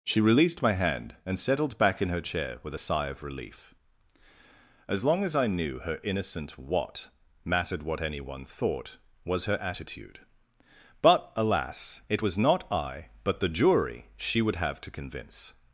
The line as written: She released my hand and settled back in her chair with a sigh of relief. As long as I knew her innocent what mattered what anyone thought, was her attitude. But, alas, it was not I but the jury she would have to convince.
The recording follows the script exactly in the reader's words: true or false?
true